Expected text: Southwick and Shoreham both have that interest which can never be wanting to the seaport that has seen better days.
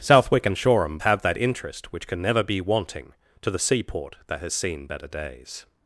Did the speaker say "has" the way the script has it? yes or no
yes